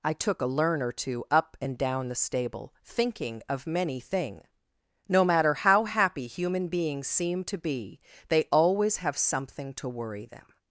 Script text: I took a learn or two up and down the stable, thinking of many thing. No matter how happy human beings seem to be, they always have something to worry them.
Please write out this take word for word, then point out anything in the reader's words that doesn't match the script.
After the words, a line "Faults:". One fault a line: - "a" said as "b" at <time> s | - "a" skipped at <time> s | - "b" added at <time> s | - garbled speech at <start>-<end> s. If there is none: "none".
I took a learn or two up and down the stable, thinking of many thing. No matter how happy human beings seem to be, they always have something to worry them.
Faults:
none